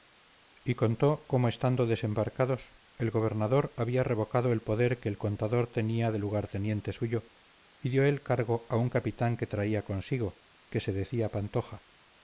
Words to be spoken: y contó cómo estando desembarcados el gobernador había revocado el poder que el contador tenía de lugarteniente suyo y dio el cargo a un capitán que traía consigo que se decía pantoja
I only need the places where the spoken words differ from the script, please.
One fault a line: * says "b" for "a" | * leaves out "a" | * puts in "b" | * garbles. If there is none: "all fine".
all fine